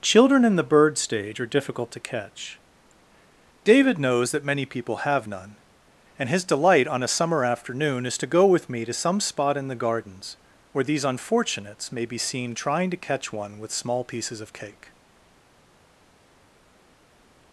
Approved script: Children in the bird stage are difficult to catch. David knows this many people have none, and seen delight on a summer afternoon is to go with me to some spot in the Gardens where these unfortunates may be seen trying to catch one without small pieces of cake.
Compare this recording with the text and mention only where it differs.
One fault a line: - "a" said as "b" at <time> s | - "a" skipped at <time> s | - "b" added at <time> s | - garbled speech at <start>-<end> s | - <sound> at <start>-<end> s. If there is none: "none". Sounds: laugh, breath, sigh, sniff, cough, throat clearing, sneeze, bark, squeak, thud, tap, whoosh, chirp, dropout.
- "this" said as "that" at 4.3 s
- "seen" said as "his" at 6.3 s
- "without" said as "with" at 13.6 s